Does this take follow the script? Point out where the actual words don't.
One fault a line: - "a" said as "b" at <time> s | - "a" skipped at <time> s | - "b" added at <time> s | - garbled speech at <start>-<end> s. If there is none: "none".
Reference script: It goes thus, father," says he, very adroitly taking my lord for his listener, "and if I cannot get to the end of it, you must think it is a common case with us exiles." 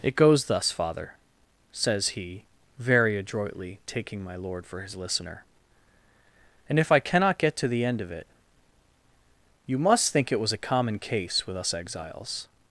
- "is" said as "was" at 10.4 s